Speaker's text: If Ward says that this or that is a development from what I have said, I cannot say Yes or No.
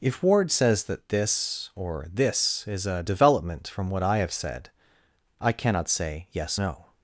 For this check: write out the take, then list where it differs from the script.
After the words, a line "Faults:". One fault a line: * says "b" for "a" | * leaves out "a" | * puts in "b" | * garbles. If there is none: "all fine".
If Ward says that this or this is a development from what I have said, I cannot say Yes No.
Faults:
* says "this" for "that"
* leaves out "or"